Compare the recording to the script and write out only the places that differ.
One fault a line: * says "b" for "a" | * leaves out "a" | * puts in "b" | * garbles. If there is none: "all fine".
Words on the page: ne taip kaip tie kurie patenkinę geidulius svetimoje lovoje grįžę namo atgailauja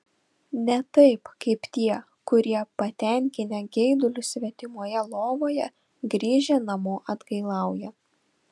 all fine